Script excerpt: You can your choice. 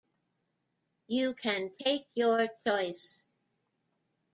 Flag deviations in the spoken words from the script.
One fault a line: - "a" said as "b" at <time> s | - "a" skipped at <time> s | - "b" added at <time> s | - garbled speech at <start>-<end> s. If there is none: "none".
- "take" added at 1.8 s